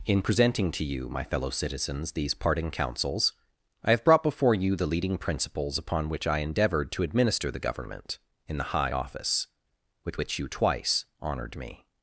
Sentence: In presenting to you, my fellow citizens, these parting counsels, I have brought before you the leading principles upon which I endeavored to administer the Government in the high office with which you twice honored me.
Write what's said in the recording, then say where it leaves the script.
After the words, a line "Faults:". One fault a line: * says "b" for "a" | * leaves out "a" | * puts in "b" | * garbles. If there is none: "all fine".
In presenting to you, my fellow citizens, these parting counsels, I have brought before you the leading principles upon which I endeavored to administer the Government in the high office with which you twice honored me.
Faults:
all fine